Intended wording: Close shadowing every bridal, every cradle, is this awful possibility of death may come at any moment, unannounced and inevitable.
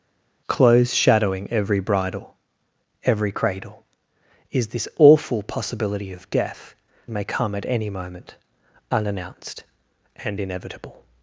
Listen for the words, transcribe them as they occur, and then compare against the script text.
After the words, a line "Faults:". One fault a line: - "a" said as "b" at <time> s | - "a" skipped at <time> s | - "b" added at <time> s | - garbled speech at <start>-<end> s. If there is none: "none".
Close shadowing every bridal, every cradle, is this awful possibility of death may come at any moment, unannounced and inevitable.
Faults:
none